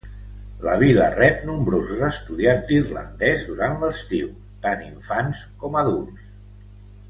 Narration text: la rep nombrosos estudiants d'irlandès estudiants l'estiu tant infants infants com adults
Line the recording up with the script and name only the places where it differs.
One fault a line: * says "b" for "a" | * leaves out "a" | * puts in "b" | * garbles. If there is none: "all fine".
* puts in "vila"
* says "durant" for "estudiants"
* leaves out "infants"